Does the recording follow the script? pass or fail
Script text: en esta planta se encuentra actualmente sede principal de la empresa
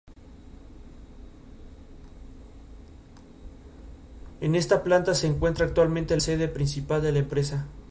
pass